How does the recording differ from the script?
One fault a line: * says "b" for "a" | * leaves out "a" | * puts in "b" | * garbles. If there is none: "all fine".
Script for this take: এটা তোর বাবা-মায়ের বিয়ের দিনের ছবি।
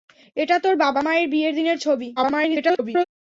* garbles